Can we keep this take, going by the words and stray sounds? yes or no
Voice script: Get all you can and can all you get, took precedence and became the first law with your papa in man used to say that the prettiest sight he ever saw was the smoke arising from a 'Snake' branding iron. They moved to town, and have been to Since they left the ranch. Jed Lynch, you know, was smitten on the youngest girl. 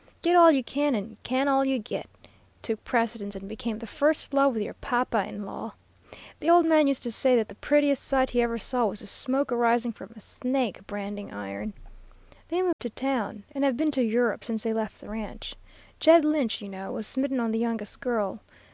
no